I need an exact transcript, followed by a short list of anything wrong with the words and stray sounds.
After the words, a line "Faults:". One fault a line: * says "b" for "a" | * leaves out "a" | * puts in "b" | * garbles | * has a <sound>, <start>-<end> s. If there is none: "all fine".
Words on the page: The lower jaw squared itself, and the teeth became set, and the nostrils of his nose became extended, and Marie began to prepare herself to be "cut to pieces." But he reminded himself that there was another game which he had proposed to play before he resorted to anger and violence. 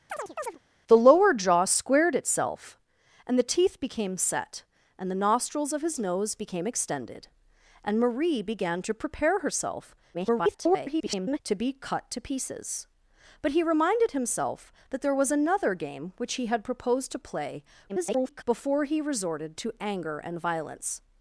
The lower jaw squared itself, and the teeth became set, and the nostrils of his nose became extended, and Marie began to prepare herself [garbled] to be "cut to pieces." But he reminded himself that there was another game which he had proposed to play [garbled] before he resorted to anger and violence.
Faults:
* has a chirp, 0.1-0.6 s
* garbles
* garbles